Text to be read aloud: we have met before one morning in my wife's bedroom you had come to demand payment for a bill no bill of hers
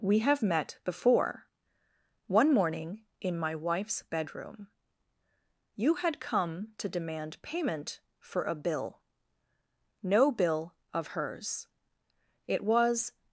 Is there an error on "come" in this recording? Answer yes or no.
no